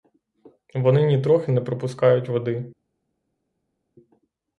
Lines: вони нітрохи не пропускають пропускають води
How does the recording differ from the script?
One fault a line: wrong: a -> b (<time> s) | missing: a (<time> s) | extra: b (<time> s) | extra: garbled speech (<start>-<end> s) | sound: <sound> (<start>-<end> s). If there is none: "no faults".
missing: пропускають (2.3 s)